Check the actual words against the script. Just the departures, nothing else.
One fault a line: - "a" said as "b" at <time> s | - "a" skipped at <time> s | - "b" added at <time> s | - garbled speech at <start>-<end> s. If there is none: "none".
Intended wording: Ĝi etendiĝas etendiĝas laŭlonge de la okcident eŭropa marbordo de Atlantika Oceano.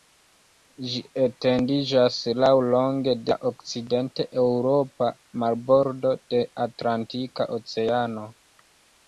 - "etendiĝas" skipped at 2.2 s